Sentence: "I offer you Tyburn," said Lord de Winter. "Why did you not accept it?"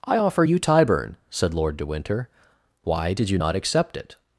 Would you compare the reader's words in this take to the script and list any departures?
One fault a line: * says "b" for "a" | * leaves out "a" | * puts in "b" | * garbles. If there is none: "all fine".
all fine